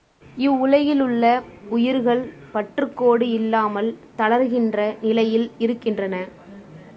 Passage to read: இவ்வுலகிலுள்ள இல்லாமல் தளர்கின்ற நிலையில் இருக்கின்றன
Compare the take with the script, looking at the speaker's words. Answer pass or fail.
fail